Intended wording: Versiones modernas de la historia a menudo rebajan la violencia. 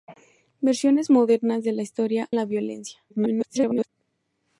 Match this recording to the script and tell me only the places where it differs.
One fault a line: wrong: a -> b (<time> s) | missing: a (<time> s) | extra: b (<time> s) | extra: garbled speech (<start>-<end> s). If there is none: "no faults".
missing: a menudo rebajan (2.3 s)
extra: garbled speech (3.1-3.9 s)